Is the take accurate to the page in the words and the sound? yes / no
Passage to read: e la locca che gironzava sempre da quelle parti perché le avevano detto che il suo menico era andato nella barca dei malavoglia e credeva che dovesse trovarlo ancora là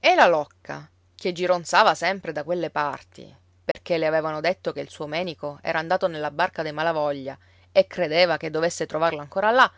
no